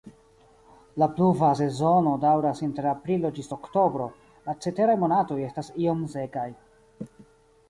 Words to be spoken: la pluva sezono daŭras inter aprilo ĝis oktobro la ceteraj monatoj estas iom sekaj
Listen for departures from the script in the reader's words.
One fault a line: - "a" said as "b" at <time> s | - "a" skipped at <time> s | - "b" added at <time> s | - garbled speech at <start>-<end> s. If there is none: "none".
none